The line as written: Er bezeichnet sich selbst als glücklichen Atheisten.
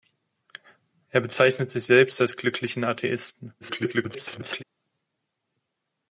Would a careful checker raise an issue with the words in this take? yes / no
yes